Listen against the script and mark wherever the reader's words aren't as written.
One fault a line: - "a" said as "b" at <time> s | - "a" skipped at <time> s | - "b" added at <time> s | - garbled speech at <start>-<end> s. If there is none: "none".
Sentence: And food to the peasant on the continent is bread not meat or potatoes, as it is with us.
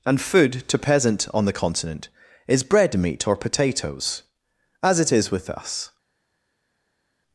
- "the" skipped at 0.8 s
- "not" skipped at 3.0 s